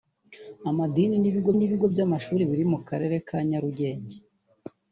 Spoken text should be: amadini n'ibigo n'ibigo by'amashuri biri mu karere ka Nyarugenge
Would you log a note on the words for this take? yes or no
no